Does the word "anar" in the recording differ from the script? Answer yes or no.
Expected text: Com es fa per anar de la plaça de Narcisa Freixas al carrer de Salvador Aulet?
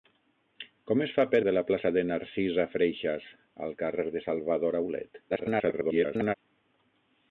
yes